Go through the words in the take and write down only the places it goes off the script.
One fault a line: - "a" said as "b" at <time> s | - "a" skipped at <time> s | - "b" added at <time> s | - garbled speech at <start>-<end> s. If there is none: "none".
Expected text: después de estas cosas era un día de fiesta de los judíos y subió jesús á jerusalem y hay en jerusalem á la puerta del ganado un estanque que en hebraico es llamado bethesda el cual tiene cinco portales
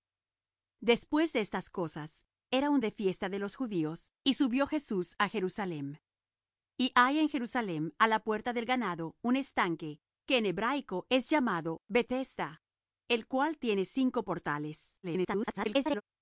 - "día" skipped at 2.8 s
- garbled speech at 15.0-16.0 s